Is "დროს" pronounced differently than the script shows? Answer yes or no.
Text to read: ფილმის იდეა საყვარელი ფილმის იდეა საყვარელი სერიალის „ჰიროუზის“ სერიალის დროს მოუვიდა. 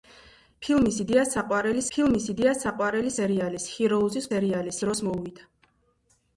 no